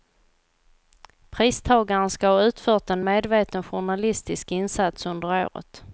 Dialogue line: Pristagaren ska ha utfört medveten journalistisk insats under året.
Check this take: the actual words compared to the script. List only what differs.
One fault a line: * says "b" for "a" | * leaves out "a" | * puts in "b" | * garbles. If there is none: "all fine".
* puts in "en"